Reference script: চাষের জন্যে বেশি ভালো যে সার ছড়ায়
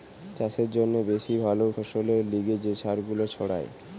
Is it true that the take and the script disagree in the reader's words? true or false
true